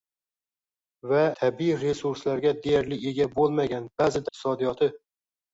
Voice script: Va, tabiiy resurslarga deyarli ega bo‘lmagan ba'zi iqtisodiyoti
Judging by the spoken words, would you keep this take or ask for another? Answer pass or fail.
pass